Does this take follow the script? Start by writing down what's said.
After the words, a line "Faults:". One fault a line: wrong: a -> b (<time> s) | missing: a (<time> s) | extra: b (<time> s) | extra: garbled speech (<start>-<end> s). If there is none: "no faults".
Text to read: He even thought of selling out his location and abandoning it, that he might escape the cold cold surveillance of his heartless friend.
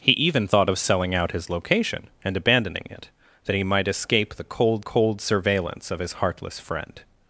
He even thought of selling out his location and abandoning it, that he might escape the cold cold surveillance of his heartless friend.
Faults:
no faults